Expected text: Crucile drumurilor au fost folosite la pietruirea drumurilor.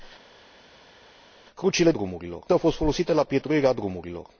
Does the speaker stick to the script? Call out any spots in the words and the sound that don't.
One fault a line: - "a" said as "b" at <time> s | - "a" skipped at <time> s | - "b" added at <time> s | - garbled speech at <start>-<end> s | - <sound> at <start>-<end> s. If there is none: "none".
none